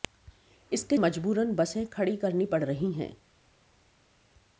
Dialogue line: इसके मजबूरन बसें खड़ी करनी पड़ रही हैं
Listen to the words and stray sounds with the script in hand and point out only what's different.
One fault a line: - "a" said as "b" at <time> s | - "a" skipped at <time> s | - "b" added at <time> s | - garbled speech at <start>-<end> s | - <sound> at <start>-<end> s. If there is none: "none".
none